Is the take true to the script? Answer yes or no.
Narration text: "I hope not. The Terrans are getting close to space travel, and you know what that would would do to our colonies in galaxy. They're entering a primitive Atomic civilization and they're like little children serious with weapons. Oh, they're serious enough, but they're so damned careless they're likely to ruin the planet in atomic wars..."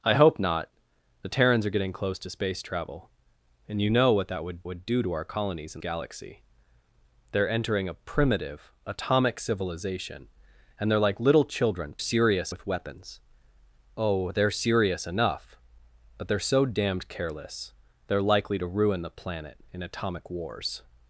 yes